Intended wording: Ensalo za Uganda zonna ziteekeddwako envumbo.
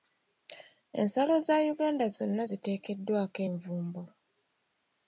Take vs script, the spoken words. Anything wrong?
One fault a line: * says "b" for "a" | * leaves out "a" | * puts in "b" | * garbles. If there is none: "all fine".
all fine